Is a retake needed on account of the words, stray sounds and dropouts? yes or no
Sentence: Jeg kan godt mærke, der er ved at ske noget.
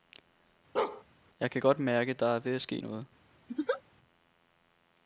yes